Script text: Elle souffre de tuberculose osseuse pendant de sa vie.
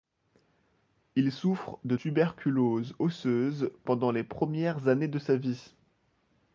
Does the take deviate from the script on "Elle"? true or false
true